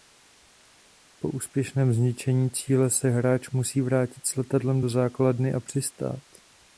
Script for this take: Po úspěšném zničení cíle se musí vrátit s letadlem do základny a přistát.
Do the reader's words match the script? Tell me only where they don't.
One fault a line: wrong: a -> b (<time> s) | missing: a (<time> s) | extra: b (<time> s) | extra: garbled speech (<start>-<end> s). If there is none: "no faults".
extra: hráč (3.1 s)